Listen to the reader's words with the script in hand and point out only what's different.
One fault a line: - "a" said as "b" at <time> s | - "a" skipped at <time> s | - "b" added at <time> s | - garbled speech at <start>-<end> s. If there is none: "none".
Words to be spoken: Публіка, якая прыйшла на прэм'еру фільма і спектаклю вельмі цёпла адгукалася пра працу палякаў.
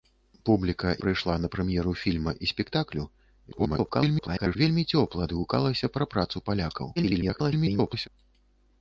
- "якая" skipped at 0.9 s
- garbled speech at 3.5-4.6 s
- garbled speech at 7.0-8.1 s